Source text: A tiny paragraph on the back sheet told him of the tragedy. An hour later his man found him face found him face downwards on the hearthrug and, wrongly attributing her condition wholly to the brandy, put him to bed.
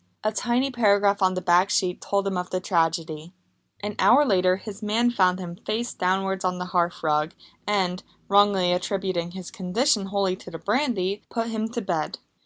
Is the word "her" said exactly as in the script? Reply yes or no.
no